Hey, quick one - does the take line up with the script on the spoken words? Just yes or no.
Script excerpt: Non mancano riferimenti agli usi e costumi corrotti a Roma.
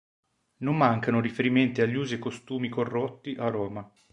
yes